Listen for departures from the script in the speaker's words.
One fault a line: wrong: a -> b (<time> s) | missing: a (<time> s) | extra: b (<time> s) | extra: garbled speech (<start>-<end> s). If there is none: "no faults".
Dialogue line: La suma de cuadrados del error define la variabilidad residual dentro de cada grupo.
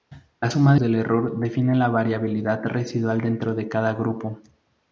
missing: de cuadrados (0.7 s)